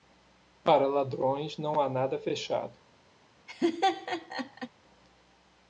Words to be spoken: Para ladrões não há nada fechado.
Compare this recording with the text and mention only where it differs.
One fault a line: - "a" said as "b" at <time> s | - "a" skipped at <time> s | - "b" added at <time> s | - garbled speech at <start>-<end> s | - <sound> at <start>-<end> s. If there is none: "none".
- laugh at 3.5-4.7 s